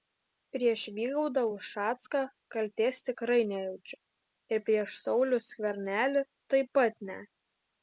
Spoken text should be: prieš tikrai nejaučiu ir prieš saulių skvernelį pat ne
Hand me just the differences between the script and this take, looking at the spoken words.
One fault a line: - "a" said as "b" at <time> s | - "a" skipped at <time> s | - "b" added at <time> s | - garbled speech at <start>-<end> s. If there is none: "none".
- "vygaudą ušacką kaltės" added at 1.0 s
- "taip" added at 6.6 s